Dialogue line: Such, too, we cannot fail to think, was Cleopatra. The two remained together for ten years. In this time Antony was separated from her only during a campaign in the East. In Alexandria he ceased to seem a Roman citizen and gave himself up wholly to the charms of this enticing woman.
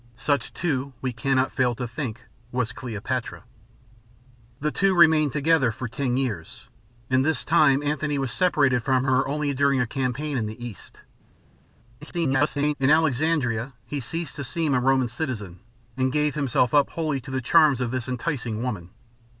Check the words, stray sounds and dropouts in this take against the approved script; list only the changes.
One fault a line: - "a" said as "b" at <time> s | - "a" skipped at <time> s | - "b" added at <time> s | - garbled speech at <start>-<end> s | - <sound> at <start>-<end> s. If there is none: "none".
- garbled speech at 12.0-12.7 s